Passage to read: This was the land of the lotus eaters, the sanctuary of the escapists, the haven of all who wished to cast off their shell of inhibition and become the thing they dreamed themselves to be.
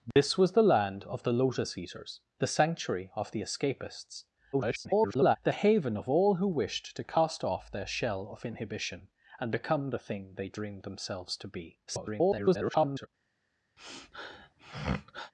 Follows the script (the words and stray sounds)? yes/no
no